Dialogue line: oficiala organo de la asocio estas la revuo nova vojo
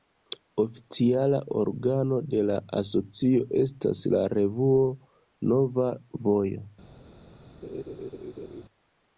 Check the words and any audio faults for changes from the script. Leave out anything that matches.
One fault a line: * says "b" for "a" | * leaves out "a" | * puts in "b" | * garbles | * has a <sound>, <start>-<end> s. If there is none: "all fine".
* has a laugh, 7.6-8.6 s